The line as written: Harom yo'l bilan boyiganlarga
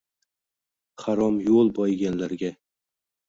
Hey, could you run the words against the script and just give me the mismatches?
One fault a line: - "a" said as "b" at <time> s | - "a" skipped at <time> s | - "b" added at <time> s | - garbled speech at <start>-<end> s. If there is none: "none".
- "bilan" skipped at 1.8 s